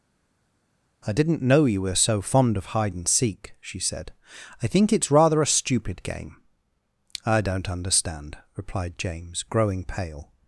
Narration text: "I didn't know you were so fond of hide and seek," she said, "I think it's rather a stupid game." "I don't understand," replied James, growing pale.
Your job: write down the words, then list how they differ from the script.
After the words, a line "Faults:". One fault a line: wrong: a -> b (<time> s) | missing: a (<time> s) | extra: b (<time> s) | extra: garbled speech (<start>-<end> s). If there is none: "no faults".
"I didn't know you were so fond of hide and seek," she said, "I think it's rather a stupid game." "I don't understand," replied James, growing pale.
Faults:
no faults